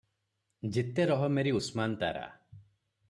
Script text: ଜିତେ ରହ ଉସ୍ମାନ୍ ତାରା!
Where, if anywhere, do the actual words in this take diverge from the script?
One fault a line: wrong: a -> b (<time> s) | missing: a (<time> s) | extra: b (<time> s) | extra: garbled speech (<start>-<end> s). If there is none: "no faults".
extra: ମେରି (1.4 s)